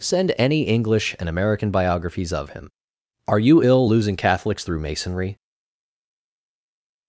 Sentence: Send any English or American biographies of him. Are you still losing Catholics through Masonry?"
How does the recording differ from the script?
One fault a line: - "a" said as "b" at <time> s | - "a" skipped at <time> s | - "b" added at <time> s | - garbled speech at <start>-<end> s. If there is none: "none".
- "or" said as "and" at 1.2 s
- "still" said as "ill" at 3.6 s